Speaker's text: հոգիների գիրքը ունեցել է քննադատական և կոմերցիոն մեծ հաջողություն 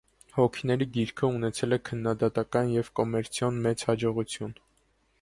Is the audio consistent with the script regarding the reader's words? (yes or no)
yes